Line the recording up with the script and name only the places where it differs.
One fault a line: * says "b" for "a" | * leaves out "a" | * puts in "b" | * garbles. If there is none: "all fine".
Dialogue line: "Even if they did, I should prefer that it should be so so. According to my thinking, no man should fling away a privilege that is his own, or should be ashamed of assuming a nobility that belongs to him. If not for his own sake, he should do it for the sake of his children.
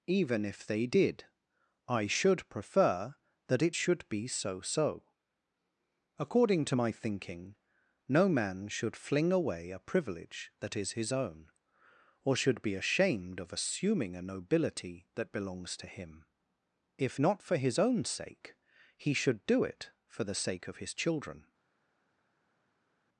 all fine